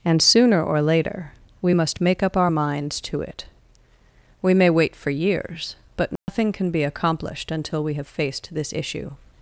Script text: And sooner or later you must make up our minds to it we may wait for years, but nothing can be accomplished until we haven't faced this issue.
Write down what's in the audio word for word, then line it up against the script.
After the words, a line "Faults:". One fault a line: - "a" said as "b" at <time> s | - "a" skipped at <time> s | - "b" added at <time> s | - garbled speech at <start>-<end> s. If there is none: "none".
And sooner or later we must make up our minds to it we may wait for years, but nothing can be accomplished until we have faced this issue.
Faults:
- "you" said as "we" at 1.6 s
- "haven't" said as "have" at 7.9 s